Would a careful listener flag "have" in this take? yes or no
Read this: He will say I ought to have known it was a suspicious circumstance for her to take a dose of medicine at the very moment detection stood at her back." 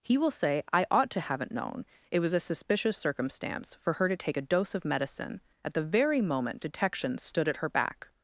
yes